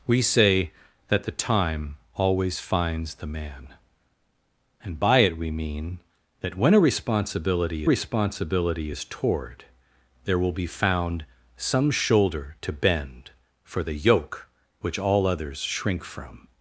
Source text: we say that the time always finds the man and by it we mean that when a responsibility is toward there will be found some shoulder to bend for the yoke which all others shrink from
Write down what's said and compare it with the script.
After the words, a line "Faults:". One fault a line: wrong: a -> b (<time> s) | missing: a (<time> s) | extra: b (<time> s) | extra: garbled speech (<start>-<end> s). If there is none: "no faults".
we say that the time always finds the man and by it we mean that when a responsibility responsibility is toward there will be found some shoulder to bend for the yoke which all others shrink from
Faults:
extra: responsibility (7.8 s)